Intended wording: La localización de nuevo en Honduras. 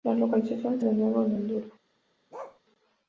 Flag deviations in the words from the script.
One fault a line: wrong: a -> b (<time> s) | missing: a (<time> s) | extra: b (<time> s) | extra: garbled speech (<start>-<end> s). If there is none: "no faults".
no faults